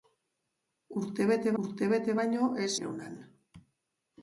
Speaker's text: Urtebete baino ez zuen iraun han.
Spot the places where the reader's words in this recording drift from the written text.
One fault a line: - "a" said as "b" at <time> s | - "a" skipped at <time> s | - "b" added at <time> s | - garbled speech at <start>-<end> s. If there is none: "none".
- "urtebete" added at 1.6 s
- "zuen" skipped at 2.7 s